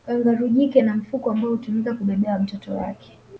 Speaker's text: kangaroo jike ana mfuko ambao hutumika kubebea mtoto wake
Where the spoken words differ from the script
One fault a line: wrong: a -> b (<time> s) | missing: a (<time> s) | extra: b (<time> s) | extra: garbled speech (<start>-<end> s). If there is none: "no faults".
no faults